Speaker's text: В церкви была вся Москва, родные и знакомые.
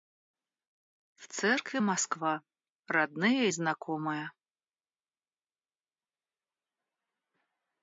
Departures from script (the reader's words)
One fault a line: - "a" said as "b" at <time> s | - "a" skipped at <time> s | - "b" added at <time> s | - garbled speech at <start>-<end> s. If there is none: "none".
- "была вся" skipped at 1.8 s